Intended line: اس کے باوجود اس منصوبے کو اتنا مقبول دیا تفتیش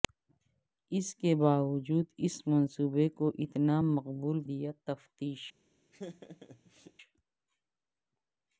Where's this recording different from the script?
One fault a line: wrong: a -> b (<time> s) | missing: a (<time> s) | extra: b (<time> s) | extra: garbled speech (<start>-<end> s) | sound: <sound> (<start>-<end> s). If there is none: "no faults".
sound: laugh (5.9-6.9 s)